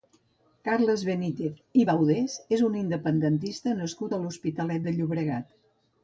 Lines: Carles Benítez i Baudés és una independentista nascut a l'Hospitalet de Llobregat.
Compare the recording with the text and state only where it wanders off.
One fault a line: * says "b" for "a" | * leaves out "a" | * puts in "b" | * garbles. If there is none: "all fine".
* says "un" for "una"